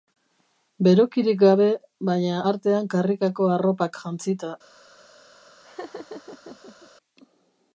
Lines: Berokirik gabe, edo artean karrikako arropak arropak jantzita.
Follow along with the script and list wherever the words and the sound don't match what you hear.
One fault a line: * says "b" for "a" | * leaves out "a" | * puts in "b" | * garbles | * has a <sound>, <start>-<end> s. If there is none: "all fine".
* says "baina" for "edo"
* leaves out "arropak"
* has a laugh, 5.6-6.9 s